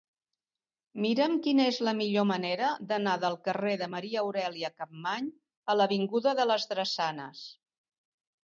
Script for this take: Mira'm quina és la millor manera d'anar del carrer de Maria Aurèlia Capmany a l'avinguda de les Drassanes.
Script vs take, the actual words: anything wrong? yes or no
no